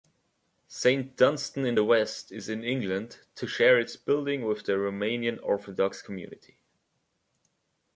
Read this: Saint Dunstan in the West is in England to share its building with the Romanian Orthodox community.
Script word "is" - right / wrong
right